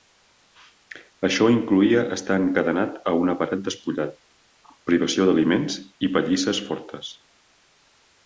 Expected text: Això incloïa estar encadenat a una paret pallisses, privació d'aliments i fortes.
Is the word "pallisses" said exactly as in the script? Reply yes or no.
no